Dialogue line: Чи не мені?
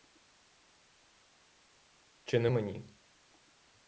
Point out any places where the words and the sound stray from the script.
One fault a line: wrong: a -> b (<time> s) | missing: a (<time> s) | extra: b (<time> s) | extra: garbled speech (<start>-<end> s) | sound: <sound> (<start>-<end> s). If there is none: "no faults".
no faults